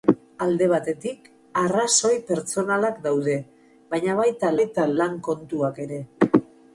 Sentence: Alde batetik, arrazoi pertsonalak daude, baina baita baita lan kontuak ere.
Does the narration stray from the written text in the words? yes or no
no